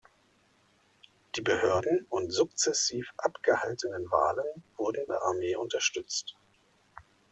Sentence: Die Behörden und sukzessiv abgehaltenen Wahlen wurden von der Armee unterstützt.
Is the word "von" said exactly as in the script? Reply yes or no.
no